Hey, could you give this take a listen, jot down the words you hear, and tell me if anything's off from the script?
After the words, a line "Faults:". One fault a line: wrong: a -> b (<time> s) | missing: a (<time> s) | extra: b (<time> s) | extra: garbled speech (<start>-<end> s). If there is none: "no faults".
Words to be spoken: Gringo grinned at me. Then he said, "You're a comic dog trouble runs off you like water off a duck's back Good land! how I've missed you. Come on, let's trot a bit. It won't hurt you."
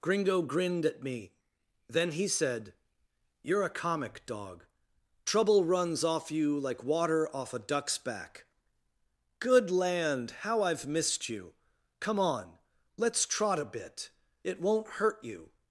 Gringo grinned at me. Then he said, "You're a comic dog trouble runs off you like water off a duck's back Good land! how I've missed you. Come on, let's trot a bit. It won't hurt you."
Faults:
no faults